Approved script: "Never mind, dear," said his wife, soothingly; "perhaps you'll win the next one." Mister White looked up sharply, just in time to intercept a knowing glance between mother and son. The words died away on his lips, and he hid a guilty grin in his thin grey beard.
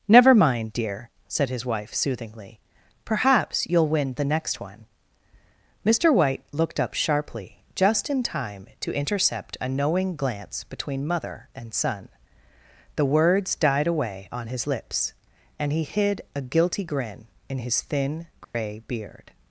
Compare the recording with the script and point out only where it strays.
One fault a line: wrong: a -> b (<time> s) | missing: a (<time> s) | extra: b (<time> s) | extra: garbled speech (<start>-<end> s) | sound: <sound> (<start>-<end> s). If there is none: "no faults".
sound: dropout (18.4-18.5 s)